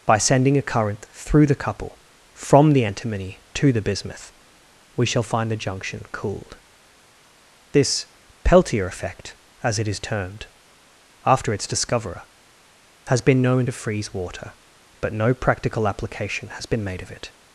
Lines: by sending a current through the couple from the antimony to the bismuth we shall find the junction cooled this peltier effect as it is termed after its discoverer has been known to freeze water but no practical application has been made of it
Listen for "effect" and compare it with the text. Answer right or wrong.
right